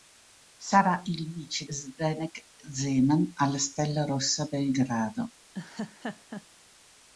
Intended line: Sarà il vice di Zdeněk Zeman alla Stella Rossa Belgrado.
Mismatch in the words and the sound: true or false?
true